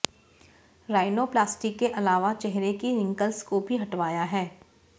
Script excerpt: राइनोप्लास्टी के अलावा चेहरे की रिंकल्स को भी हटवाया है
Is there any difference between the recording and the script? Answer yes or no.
no